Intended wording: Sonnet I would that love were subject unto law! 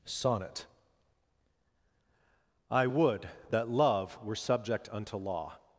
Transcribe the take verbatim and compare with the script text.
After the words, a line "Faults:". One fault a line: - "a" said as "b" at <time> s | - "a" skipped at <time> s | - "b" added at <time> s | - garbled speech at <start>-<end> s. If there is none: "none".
Sonnet I would that love were subject unto law!
Faults:
none